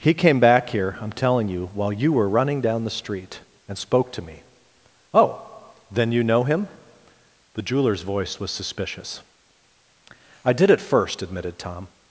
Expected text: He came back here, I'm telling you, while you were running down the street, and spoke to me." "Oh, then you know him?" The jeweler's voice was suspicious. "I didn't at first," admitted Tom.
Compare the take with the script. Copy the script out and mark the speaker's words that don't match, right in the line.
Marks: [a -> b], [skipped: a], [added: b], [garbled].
He came back here, I'm telling you, while you were running down the street, and spoke to me." "Oh, then you know him?" The jeweler's voice was suspicious. "I [didn't -> did] at first," admitted Tom.